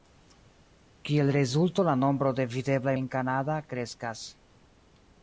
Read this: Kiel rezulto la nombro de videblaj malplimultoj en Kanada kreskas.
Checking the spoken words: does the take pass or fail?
fail